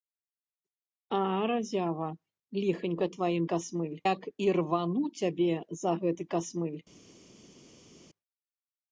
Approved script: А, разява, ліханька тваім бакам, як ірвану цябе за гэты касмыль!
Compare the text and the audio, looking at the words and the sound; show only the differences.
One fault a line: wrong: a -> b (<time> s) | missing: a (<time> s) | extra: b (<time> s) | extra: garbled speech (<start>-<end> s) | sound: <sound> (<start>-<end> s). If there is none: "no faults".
wrong: бакам -> касмыль (3.6 s)